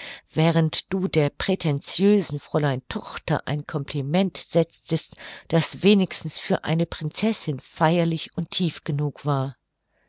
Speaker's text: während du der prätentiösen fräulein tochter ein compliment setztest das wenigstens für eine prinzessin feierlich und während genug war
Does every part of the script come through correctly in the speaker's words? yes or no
no